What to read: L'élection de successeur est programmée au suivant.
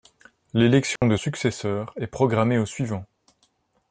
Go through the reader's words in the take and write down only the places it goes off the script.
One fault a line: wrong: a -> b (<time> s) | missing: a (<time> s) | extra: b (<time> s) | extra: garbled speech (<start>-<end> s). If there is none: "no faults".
no faults